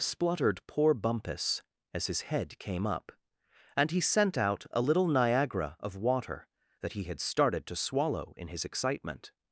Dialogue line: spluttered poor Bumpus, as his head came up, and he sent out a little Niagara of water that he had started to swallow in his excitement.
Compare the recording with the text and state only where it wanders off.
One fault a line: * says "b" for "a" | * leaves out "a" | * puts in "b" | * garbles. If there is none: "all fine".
all fine